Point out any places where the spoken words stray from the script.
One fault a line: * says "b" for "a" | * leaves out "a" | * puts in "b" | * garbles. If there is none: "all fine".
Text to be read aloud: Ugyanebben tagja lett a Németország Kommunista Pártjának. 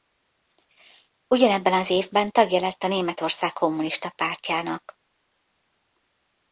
* puts in "az évben"